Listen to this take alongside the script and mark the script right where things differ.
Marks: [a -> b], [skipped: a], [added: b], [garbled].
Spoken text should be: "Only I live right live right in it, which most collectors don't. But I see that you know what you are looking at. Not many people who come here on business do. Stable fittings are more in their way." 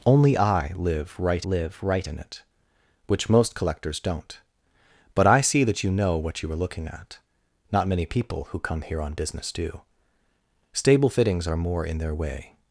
"Only I live right live right in it, which most collectors don't. But I see that you know what you are looking at. Not many people who come here on business do. Stable fittings are more in their way."